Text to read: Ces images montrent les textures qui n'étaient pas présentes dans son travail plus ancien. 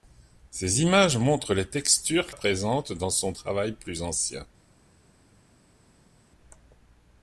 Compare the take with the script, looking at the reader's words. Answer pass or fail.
fail